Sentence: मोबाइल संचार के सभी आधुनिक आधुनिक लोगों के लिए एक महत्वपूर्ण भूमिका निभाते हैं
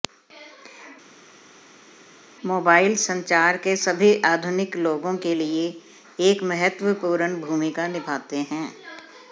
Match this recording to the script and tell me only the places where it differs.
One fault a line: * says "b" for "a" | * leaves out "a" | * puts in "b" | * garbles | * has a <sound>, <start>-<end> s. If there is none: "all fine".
* leaves out "आधुनिक"